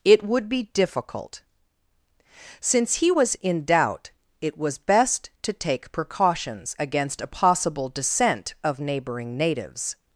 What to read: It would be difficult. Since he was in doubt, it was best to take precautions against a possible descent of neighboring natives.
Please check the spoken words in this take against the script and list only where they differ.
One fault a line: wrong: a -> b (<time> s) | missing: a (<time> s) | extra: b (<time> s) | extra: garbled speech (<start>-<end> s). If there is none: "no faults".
no faults